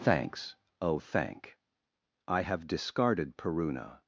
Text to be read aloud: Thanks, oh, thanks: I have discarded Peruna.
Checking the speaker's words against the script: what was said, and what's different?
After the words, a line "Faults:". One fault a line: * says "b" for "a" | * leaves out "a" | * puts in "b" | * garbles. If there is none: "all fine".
Thanks, oh, thank: I have discarded Peruna.
Faults:
* says "thank" for "thanks"